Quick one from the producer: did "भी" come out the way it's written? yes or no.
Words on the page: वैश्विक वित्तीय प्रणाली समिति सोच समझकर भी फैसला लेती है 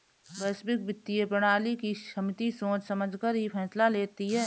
no